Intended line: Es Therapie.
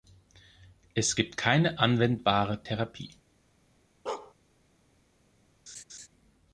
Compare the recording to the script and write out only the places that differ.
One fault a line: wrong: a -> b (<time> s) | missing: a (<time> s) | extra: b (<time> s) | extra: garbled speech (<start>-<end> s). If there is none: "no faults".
extra: gibt keine anwendbare (1.1 s)